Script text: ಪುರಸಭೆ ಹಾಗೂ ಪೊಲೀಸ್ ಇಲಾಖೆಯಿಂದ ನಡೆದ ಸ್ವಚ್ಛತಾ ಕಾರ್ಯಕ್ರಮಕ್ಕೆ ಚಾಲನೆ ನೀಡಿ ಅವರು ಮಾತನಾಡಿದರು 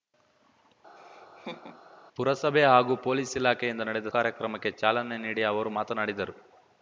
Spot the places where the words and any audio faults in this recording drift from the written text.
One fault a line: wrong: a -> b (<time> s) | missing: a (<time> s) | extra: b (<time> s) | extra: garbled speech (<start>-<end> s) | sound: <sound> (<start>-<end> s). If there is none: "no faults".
sound: laugh (1.0-1.8 s)
missing: ಸ್ವಚ್ಛತಾ (4.1 s)